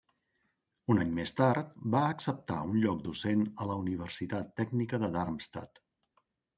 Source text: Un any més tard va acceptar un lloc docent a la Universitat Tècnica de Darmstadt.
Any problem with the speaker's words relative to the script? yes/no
no